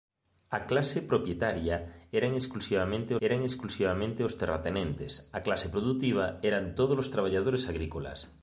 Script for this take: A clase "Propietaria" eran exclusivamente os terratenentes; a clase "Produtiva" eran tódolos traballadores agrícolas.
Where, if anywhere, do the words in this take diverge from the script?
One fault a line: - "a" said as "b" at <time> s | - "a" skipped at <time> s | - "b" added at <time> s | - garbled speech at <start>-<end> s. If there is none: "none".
- "eran exclusivamente" added at 3.3 s